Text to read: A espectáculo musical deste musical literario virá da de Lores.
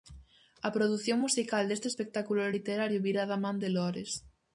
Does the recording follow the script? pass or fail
fail